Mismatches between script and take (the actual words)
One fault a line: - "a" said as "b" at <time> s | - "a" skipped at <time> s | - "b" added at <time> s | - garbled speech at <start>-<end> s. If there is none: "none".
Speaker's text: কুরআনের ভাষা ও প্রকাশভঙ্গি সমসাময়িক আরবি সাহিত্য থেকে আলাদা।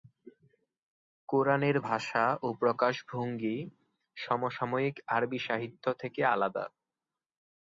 none